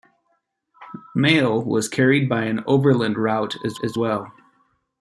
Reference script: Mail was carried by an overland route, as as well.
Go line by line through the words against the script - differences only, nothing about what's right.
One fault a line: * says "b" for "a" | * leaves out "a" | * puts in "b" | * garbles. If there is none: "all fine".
all fine